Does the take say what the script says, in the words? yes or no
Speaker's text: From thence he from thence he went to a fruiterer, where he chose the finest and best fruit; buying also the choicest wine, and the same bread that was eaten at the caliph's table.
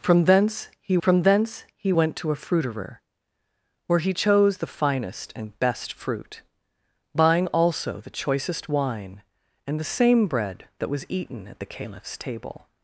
yes